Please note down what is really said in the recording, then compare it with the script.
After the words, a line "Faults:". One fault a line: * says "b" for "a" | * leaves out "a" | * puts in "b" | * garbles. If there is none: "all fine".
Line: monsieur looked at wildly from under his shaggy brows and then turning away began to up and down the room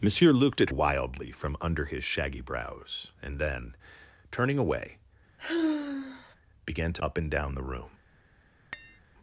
monsieur looked at wildly from under his shaggy brows and then turning away began to up and down the room
Faults:
all fine